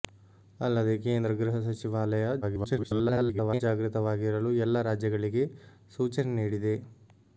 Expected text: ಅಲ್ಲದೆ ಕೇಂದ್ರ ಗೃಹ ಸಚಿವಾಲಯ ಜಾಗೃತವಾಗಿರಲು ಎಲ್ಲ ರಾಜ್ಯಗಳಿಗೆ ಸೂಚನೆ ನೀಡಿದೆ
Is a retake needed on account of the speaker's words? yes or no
yes